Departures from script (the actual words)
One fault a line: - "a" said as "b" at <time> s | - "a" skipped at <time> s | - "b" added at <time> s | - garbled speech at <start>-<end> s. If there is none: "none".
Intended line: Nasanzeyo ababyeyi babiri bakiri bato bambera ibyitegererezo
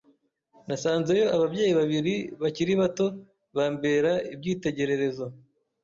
none